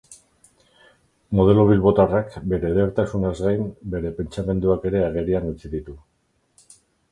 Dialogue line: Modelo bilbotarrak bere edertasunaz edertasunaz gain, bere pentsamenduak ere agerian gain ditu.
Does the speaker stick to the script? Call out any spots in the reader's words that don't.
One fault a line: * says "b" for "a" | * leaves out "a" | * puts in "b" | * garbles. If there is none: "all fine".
* leaves out "edertasunaz"
* says "utzi" for "gain"